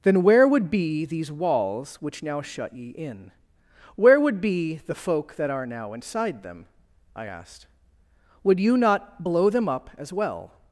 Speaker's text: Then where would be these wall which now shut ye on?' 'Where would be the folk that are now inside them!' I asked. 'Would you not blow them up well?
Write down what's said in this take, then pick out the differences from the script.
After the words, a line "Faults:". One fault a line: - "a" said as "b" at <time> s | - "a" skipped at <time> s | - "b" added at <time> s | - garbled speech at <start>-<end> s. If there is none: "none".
Then where would be these walls which now shut ye in?' 'Where would be the folk that are now inside them!' I asked. 'Would you not blow them up as well?
Faults:
- "wall" said as "walls" at 1.3 s
- "on" said as "in" at 2.9 s
- "as" added at 10.0 s